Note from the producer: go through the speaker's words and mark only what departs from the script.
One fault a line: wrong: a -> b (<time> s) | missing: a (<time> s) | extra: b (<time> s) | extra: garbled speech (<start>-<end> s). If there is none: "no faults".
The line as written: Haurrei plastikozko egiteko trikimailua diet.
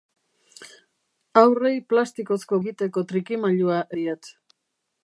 no faults